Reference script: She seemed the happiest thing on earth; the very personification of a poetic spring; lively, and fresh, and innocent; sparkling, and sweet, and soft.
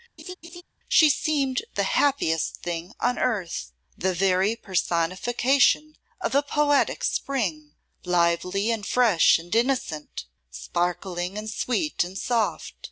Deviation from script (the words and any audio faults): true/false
true